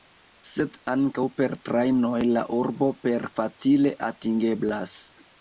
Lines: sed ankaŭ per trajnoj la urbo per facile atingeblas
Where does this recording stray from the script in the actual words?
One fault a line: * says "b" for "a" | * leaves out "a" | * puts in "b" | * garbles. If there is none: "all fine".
all fine